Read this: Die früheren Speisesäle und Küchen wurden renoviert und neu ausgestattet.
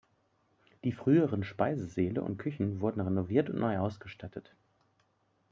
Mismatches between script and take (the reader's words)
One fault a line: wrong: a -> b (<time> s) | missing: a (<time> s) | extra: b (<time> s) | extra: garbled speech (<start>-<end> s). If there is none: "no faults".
no faults